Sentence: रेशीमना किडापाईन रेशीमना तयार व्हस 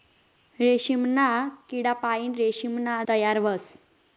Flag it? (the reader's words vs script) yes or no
no